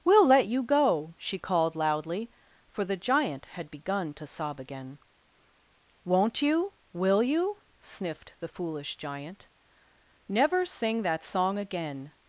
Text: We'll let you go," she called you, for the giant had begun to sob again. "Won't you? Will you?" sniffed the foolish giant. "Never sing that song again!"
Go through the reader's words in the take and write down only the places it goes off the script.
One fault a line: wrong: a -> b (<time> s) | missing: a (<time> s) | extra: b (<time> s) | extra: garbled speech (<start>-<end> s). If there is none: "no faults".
wrong: you -> loudly (1.8 s)